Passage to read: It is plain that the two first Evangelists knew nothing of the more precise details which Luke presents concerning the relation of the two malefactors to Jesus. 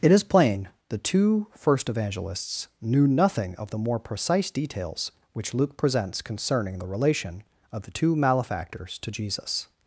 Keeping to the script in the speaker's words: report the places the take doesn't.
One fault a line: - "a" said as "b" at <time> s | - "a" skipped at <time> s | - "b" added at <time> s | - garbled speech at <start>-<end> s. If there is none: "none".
- "that" skipped at 0.7 s